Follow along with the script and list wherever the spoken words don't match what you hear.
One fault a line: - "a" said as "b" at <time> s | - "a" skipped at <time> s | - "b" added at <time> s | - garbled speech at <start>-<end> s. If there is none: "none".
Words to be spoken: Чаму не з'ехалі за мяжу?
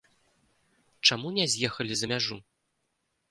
none